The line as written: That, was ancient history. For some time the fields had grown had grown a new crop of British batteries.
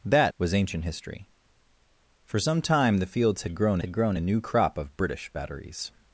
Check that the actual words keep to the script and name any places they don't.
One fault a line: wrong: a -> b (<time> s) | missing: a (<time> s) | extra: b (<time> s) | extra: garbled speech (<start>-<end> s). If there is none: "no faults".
no faults